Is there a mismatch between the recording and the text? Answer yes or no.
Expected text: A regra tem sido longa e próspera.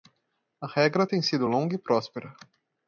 no